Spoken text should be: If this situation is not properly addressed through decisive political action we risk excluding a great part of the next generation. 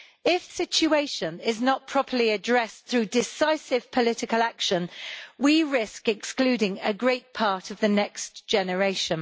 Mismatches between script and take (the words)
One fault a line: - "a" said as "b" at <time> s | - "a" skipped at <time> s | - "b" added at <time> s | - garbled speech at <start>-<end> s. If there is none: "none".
- "this" skipped at 0.5 s